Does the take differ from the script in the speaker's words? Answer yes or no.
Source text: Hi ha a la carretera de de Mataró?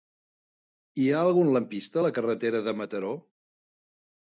yes